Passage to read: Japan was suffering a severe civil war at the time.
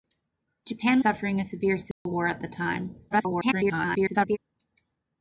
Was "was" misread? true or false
true